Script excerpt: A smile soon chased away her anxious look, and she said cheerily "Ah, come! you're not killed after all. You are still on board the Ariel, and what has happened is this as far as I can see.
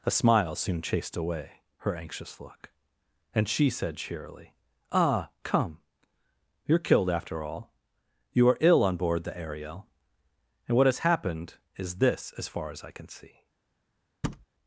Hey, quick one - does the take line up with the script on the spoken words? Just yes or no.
no